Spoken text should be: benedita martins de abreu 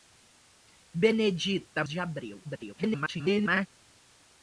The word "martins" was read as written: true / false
false